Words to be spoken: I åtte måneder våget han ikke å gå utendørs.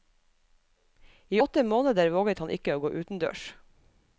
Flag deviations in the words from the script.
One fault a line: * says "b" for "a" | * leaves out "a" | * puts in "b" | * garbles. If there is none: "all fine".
all fine